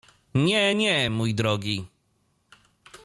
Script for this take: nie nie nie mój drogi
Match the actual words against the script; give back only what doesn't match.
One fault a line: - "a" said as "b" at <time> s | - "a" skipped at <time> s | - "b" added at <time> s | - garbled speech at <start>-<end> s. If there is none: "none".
- "nie" skipped at 1.1 s